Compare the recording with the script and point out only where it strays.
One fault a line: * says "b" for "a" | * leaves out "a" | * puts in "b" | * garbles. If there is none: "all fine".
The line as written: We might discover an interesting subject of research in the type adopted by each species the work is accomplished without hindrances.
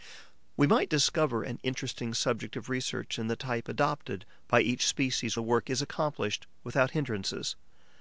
all fine